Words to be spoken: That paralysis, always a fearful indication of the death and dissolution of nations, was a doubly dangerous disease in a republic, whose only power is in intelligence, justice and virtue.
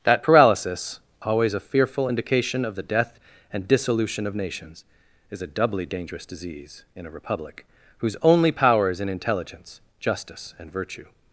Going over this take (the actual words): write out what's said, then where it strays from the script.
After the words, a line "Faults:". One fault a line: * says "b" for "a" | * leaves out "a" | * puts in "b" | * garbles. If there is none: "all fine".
That paralysis, always a fearful indication of the death and dissolution of nations, is a doubly dangerous disease in a republic, whose only power is in intelligence, justice and virtue.
Faults:
* says "is" for "was"